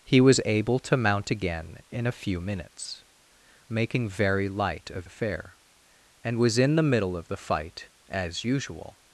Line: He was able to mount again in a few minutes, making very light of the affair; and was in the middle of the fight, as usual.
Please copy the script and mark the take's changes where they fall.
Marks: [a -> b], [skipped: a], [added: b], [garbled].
He was able to mount again in a few minutes, making very light of [skipped: the] affair; and was in the middle of the fight, as usual.